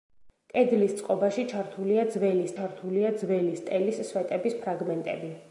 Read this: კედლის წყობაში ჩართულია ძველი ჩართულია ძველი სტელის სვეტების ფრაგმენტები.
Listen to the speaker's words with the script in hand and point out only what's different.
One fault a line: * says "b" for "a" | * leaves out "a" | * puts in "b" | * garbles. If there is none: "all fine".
all fine